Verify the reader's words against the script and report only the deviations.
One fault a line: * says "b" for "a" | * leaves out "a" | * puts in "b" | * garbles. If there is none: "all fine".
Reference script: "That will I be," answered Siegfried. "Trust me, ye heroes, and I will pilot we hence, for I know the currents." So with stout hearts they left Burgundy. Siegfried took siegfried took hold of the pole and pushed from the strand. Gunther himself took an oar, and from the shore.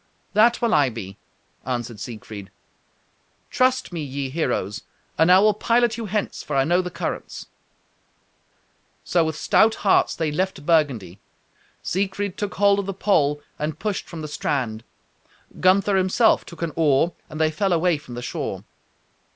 * says "you" for "we"
* leaves out "siegfried took"
* puts in "they fell away"